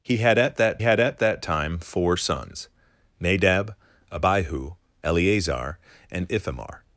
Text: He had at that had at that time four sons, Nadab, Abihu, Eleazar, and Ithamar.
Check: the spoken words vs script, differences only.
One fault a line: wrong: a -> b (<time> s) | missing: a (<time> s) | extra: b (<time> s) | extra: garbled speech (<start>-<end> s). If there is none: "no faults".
no faults